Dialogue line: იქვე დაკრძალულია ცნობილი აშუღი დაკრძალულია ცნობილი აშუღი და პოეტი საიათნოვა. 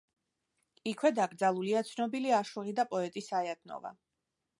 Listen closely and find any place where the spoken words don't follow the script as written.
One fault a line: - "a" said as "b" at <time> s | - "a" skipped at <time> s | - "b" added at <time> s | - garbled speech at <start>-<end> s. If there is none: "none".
- "დაკრძალულია ცნობილი აშუღი" skipped at 2.7 s